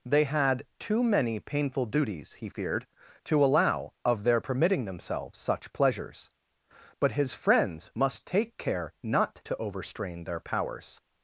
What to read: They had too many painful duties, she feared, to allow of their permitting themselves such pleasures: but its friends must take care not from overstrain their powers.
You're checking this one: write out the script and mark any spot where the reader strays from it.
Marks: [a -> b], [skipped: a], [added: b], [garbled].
They had too many painful duties, [she -> he] feared, to allow of their permitting themselves such pleasures: but [its -> his] friends must take care not [from -> to] overstrain their powers.